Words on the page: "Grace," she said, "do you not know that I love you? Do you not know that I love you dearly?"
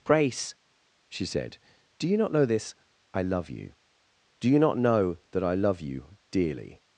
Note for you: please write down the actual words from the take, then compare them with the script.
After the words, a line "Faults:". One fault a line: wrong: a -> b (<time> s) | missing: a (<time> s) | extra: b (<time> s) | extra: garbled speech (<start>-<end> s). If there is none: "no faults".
"Grace," she said, "do you not know this I love you? Do you not know that I love you dearly?"
Faults:
wrong: that -> this (2.4 s)